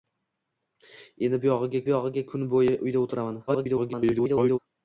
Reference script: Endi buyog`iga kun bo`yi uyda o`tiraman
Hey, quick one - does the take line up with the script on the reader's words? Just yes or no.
no